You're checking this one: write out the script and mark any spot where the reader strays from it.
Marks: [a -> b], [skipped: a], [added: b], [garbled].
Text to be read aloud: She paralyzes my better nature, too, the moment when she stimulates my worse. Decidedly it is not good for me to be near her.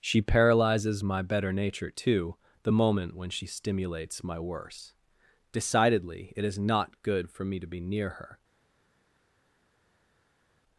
She paralyzes my better nature, too, the moment when she stimulates my worse. Decidedly it is not good for me to be near her.